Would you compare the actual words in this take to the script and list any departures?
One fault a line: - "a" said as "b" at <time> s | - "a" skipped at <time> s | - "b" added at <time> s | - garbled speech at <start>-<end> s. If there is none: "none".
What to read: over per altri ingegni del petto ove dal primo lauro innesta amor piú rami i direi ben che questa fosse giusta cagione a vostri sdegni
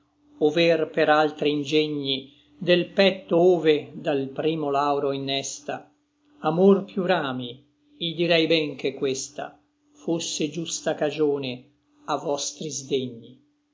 none